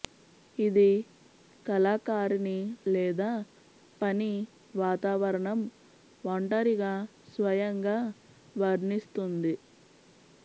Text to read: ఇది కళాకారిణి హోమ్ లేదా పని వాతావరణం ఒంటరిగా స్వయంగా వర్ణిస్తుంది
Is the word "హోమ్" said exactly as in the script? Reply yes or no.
no